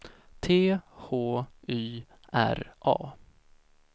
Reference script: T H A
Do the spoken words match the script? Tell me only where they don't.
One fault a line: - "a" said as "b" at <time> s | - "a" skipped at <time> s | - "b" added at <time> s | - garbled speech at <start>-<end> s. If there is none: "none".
- "Y R" added at 1.7 s